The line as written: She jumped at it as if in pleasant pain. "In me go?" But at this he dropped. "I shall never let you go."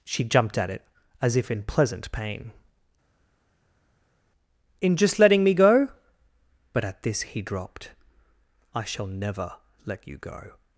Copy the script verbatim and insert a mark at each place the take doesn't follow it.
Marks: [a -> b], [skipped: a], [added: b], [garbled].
She jumped at it as if in pleasant pain. "In [added: just letting] me go?" But at this he dropped. "I shall never let you go."